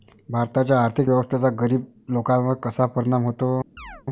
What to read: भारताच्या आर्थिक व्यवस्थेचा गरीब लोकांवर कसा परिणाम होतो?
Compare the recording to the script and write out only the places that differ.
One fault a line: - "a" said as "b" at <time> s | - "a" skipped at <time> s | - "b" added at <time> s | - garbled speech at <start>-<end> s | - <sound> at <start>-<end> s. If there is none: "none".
- chirp at 3.8-4.0 s